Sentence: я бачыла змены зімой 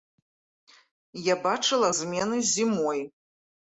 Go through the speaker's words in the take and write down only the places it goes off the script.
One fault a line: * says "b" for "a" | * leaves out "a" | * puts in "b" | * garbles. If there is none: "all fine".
all fine